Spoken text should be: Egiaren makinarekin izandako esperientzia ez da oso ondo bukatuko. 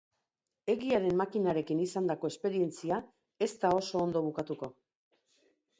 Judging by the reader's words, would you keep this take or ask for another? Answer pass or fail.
pass